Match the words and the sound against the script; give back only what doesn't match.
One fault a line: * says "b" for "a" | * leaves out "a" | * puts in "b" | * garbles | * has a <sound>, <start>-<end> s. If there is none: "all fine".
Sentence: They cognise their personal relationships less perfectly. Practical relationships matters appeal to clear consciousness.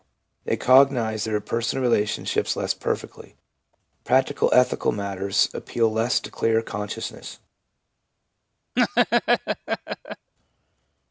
* says "ethical" for "relationships"
* puts in "less"
* has a laugh, 8.8-10.3 s